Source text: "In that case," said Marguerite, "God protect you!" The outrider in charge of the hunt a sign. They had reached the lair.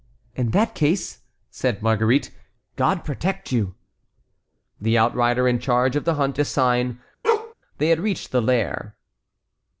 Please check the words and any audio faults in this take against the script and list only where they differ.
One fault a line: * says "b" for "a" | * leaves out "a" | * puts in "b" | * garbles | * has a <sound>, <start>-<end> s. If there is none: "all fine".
* has a bark, 7.2-7.5 s